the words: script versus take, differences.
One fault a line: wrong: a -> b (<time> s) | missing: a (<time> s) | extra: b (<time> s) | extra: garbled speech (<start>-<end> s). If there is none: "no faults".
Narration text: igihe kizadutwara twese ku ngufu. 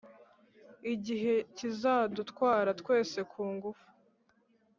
no faults